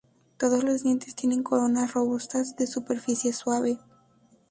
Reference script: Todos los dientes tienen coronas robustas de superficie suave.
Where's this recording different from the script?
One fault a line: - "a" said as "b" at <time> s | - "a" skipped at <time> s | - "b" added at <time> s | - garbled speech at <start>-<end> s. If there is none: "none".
none